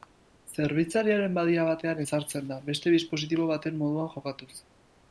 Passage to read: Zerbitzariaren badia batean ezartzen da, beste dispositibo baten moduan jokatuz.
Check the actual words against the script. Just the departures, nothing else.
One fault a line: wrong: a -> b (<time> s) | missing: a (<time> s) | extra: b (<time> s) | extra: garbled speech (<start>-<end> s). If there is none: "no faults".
no faults